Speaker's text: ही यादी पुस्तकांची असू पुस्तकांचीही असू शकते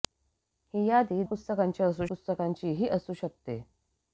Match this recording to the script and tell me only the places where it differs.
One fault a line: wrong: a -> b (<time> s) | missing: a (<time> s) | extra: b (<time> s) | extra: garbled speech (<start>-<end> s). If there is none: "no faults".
no faults